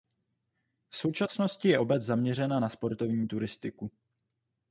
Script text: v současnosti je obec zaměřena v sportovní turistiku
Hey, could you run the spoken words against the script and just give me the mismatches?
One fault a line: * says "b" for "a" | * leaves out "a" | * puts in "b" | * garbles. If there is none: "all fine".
* says "na" for "v"